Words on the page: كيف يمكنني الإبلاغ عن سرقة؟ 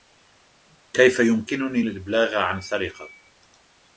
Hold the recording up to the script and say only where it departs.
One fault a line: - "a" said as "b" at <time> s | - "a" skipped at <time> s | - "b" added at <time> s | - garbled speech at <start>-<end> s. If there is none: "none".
none